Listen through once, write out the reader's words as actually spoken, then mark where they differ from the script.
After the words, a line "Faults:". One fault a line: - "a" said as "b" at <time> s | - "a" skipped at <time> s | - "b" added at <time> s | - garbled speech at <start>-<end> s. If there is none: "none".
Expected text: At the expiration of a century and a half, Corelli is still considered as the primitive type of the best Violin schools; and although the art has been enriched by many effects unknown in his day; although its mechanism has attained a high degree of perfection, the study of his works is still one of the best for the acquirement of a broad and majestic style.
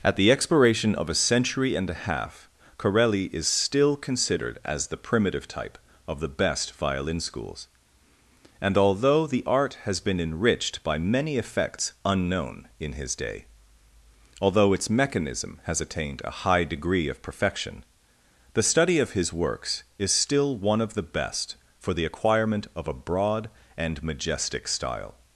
At the expiration of a century and a half, Corelli is still considered as the primitive type of the best Violin schools; and although the art has been enriched by many effects unknown in his day; although its mechanism has attained a high degree of perfection, the study of his works is still one of the best for the acquirement of a broad and majestic style.
Faults:
none